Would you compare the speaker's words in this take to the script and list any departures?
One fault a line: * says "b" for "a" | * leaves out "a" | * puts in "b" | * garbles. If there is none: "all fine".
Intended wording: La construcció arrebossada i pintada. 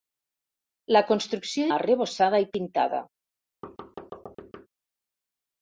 all fine